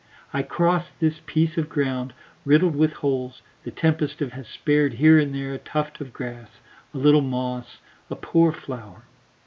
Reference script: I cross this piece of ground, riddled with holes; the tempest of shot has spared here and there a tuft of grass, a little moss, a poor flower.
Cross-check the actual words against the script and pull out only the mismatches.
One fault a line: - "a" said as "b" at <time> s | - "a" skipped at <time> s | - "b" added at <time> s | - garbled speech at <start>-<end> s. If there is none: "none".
- "shot" skipped at 4.3 s